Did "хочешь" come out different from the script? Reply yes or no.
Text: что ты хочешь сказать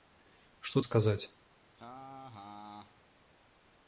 yes